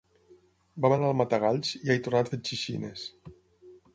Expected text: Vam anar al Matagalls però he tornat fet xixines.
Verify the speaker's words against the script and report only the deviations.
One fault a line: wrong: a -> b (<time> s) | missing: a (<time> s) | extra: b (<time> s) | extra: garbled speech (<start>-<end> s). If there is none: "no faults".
wrong: però -> i (1.8 s)